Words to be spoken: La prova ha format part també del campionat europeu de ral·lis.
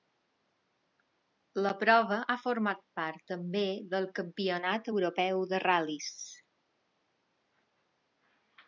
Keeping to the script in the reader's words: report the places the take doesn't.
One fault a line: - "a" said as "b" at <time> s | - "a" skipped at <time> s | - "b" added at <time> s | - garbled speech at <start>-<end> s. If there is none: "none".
none